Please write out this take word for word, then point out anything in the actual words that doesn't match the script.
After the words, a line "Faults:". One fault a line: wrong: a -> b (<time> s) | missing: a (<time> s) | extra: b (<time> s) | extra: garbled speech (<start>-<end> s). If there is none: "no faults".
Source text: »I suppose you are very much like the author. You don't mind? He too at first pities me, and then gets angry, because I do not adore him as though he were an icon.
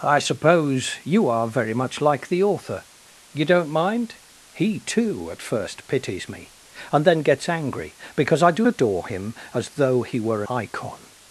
»I suppose you are very much like the author. You don't mind? He too at first pities me, and then gets angry, because I do adore him as though he were icon.
Faults:
missing: not (8.7 s)
missing: an (10.4 s)